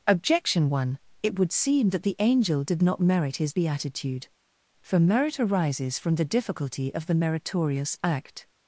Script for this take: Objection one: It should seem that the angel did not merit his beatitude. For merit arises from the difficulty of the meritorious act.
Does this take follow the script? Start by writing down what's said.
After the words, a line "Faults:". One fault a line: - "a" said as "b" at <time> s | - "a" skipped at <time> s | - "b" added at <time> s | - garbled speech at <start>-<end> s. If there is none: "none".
Objection one: It would seem that the angel did not merit his beatitude. For merit arises from the difficulty of the meritorious act.
Faults:
- "should" said as "would" at 1.4 s